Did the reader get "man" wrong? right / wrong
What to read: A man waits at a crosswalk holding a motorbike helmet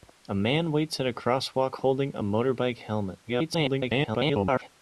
right